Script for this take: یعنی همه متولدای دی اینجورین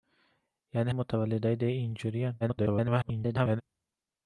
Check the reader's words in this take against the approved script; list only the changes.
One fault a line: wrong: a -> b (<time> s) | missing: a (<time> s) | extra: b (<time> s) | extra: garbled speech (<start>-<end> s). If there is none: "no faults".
missing: همه (0.9 s)
extra: garbled speech (2.4-3.6 s)